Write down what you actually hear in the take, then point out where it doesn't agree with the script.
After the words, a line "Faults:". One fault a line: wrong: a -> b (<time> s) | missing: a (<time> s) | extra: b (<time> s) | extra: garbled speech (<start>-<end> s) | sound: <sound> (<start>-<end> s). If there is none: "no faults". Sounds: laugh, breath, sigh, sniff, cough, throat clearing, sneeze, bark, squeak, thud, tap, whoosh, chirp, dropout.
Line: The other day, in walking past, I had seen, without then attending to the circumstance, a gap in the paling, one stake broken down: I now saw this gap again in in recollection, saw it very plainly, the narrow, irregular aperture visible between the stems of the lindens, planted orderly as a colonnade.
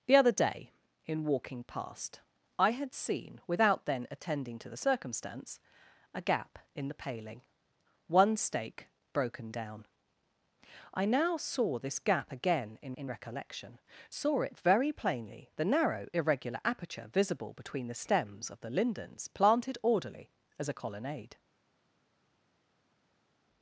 The other day, in walking past, I had seen, without then attending to the circumstance, a gap in the paling, one stake broken down: I now saw this gap again in in recollection, saw it very plainly, the narrow, irregular aperture visible between the stems of the lindens, planted orderly as a colonnade.
Faults:
no faults